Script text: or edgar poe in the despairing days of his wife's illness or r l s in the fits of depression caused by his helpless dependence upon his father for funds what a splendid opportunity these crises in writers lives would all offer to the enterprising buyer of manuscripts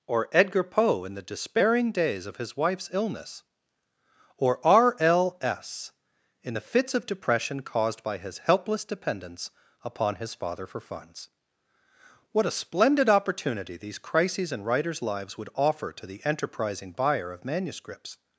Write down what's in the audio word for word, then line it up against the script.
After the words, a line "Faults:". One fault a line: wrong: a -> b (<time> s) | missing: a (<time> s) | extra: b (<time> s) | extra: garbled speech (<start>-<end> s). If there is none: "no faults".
or edgar poe in the despairing days of his wife's illness or r l s in the fits of depression caused by his helpless dependence upon his father for funds what a splendid opportunity these crises in writers lives would offer to the enterprising buyer of manuscripts
Faults:
missing: all (15.5 s)